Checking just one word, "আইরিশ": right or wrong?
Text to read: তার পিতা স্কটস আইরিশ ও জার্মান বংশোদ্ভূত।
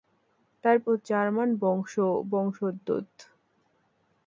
wrong